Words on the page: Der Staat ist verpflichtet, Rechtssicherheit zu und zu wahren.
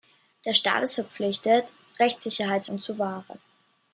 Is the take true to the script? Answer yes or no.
yes